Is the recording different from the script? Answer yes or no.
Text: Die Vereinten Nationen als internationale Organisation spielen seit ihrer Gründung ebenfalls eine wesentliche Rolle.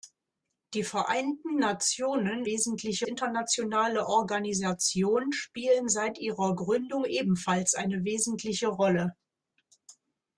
yes